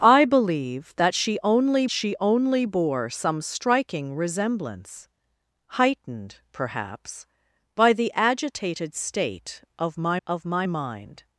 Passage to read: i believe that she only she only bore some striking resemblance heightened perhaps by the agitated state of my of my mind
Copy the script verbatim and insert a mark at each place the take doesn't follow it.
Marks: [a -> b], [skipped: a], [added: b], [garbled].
i believe that she only she only bore some striking resemblance heightened perhaps by the agitated state of my of my mind